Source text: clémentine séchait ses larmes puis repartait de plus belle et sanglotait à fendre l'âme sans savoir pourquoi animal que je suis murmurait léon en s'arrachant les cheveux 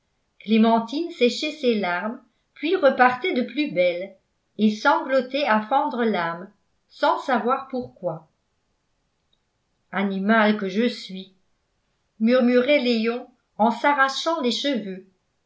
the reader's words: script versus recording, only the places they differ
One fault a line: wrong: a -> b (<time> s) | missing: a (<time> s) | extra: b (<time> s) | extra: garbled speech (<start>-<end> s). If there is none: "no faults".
no faults